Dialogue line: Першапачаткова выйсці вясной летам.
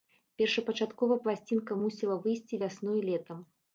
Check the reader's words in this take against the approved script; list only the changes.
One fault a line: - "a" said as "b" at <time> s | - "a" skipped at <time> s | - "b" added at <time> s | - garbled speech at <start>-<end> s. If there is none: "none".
- "пласцінка мусіла" added at 1.2 s